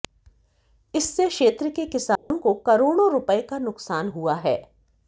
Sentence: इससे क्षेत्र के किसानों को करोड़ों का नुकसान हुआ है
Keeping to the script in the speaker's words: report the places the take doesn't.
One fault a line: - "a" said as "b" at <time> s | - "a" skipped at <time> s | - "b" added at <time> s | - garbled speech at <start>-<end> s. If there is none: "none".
- "रुपए" added at 3.1 s